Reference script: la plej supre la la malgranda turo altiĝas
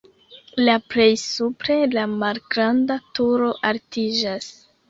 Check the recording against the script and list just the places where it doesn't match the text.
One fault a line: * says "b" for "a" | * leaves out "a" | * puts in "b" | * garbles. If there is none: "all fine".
* leaves out "la"